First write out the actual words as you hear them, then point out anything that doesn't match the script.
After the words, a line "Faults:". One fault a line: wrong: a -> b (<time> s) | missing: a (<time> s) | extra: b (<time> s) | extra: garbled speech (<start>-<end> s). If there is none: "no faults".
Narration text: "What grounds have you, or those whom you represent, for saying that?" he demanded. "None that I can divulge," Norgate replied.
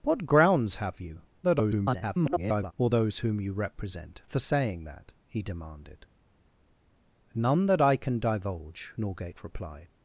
"What grounds have you, [garbled] or those whom you represent, for saying that?" he demanded. "None that I can divulge," Norgate replied.
Faults:
extra: garbled speech (1.4-2.7 s)